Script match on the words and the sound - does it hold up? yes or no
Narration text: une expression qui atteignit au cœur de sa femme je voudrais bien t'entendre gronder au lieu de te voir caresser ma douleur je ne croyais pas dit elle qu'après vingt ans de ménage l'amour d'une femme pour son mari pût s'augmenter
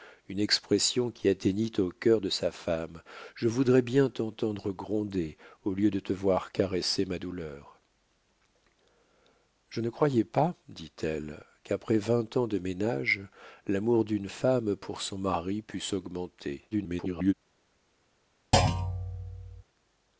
no